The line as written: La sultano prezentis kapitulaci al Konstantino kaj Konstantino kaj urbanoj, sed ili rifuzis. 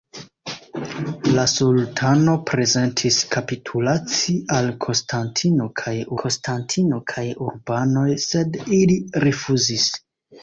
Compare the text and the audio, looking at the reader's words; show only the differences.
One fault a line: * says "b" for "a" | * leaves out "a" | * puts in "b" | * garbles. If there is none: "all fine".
all fine